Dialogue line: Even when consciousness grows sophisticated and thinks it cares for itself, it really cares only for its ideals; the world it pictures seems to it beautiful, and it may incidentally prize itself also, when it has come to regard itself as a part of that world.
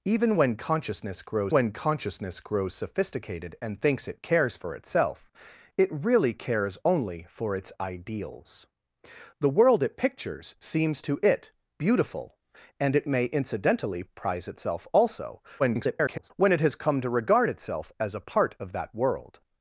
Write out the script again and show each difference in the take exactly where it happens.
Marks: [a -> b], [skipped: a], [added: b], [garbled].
Even when consciousness grows [added: when consciousness grows] sophisticated and thinks it cares for itself, it really cares only for its ideals; the world it pictures seems to it beautiful, and it may incidentally prize itself also, [garbled] when it has come to regard itself as a part of that world.